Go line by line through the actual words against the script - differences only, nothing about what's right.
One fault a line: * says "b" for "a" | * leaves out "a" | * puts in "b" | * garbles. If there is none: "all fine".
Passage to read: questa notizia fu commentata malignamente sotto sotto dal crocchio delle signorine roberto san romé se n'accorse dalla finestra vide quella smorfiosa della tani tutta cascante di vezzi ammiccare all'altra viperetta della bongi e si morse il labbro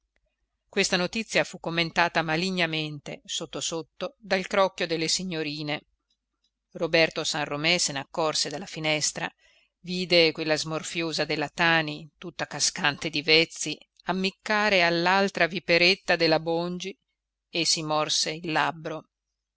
all fine